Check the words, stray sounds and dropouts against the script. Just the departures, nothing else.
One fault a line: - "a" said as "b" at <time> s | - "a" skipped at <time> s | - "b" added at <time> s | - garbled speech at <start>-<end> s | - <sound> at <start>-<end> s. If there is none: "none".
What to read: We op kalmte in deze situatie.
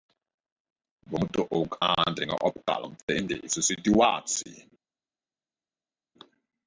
- "moeten ook aandringen" added at 1.2 s